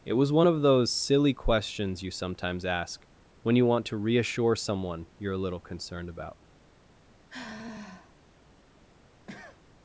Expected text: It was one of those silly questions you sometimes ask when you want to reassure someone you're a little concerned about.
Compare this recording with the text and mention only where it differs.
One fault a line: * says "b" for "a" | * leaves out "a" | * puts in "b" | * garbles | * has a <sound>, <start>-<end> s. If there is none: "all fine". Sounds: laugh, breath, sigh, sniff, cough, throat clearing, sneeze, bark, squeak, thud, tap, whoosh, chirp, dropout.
* has a sigh, 7.3-8.1 s
* has a cough, 9.3-9.6 s